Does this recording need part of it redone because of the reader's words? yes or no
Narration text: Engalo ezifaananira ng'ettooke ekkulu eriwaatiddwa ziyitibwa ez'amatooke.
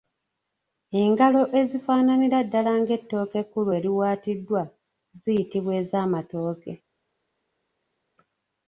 yes